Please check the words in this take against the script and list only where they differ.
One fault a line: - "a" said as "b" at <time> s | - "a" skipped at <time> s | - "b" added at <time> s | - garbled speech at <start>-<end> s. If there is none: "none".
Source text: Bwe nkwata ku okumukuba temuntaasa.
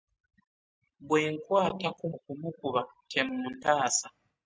none